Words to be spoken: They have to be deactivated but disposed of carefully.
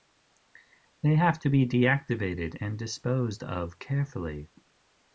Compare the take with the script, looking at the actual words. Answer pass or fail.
fail